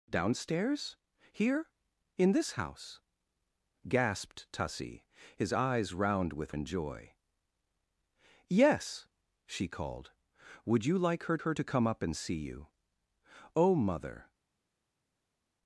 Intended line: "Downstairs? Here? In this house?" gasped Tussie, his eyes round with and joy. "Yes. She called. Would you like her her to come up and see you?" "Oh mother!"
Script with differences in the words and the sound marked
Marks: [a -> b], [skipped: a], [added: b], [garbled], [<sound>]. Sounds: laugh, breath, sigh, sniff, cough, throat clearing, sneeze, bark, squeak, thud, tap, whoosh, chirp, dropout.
"Downstairs? Here? In this house?" gasped Tussie, his eyes round with and joy. "Yes. She called. Would you like her her to come up and see you?" "Oh mother!"